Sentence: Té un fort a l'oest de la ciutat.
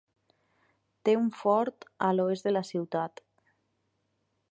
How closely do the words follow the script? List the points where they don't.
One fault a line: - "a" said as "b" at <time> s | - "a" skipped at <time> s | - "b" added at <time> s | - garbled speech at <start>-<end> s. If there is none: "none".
none